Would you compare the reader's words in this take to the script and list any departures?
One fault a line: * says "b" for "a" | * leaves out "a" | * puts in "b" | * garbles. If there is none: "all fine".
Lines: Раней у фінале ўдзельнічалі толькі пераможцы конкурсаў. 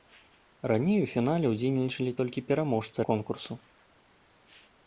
all fine